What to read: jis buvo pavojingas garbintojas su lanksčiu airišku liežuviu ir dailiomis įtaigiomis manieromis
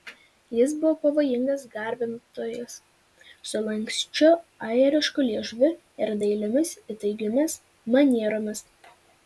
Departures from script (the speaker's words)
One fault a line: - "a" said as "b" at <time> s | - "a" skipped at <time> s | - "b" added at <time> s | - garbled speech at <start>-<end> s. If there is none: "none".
none